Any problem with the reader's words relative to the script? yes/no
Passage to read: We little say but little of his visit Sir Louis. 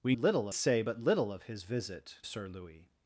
no